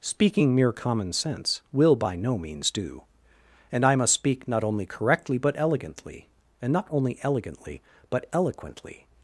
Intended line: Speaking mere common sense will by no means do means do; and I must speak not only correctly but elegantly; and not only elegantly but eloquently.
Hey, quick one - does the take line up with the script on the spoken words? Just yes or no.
no